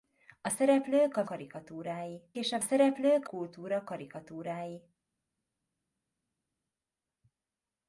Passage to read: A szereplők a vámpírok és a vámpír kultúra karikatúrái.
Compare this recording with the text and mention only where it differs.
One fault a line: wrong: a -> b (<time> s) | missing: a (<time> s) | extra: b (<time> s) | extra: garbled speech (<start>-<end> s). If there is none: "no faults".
wrong: vámpírok -> karikatúrái (1.2 s)
wrong: vámpír -> szereplők (2.6 s)